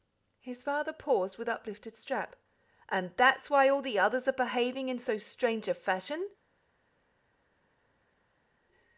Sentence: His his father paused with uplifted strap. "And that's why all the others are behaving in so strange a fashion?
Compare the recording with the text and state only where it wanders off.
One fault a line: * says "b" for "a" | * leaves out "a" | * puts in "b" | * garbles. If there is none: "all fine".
* leaves out "his"